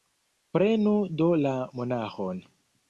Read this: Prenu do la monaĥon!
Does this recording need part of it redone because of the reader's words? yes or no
no